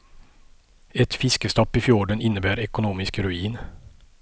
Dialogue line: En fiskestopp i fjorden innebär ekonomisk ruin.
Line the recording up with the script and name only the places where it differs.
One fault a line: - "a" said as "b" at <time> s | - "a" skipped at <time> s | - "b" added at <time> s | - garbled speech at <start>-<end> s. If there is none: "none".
- "En" said as "Ett" at 0.9 s